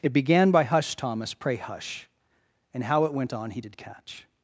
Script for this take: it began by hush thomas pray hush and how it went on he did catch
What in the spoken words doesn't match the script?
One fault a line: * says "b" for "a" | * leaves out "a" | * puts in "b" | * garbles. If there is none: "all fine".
all fine